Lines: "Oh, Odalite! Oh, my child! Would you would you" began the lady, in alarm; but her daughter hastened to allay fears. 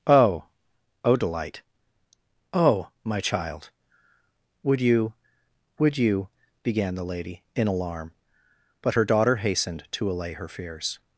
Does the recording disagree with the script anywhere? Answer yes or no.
yes